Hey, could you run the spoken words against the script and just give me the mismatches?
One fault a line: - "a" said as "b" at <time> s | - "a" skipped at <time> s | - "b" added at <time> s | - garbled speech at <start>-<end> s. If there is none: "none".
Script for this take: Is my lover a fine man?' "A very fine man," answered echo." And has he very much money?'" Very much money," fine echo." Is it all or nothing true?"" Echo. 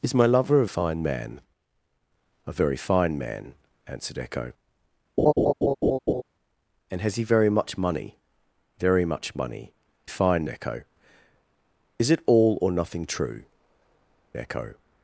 none